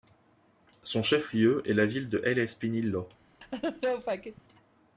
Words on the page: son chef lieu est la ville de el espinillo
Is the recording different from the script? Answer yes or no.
no